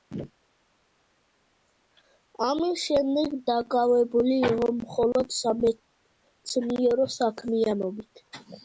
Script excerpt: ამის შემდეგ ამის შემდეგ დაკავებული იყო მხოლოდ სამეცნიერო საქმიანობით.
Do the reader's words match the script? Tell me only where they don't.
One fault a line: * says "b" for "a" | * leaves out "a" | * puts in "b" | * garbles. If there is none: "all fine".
* leaves out "ამის შემდეგ"